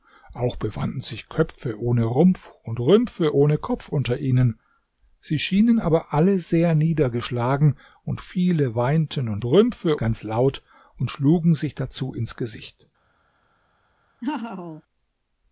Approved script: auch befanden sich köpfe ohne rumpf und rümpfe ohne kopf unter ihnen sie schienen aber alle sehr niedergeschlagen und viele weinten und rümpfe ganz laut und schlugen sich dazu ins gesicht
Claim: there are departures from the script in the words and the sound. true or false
true